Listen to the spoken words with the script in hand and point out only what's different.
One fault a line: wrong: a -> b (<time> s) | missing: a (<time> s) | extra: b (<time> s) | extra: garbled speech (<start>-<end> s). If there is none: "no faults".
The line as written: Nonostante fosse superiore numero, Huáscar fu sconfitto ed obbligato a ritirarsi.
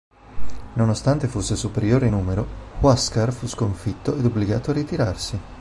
no faults